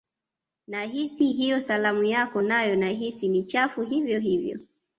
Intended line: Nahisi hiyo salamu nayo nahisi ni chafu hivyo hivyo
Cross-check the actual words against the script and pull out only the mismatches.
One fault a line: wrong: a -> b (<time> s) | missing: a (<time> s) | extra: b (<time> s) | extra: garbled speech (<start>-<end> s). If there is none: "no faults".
extra: yako (2.0 s)